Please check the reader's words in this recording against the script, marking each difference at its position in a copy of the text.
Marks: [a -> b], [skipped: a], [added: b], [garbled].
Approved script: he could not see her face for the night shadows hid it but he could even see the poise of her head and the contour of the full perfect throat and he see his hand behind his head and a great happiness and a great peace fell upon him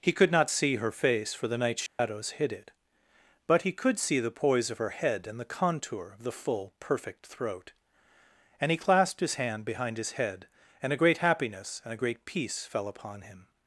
he could not see her face for the night shadows hid it but he could [skipped: even] see the poise of her head and the contour of the full perfect throat and he [see -> clasped] his hand behind his head and a great happiness and a great peace fell upon him